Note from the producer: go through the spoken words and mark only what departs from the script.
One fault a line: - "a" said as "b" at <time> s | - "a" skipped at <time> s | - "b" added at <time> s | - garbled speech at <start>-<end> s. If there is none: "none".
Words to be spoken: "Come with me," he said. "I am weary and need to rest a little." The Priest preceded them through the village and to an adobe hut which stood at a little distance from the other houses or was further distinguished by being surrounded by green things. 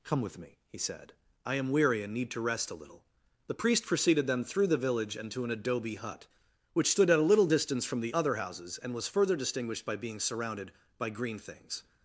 - "or" said as "and" at 8.8 s